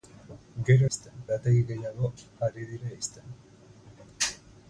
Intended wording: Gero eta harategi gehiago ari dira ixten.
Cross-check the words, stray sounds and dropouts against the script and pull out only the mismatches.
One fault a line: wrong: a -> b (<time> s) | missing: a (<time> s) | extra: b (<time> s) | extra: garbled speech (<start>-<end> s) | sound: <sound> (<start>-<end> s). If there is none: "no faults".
wrong: eta -> ixten (0.9 s)